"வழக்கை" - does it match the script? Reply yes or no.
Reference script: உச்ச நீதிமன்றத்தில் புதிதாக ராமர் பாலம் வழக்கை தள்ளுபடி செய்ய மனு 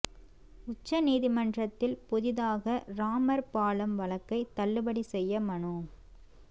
yes